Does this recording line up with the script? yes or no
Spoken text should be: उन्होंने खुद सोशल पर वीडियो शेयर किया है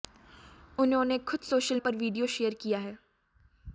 yes